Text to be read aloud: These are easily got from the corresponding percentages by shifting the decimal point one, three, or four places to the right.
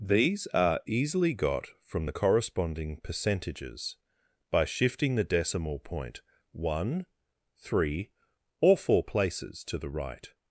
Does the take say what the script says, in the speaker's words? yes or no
yes